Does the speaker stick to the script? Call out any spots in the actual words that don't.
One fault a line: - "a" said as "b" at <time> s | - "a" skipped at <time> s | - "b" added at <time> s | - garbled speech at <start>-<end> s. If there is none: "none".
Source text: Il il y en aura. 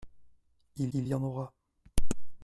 none